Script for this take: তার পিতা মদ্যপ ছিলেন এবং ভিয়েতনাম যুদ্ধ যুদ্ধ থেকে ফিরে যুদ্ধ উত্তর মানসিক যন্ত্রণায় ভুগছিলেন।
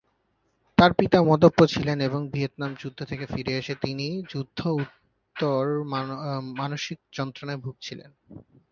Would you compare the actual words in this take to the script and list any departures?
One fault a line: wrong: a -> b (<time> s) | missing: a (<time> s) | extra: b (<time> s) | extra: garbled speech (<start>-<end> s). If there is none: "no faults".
missing: যুদ্ধ (3.0 s)
extra: এসে তিনি (3.6 s)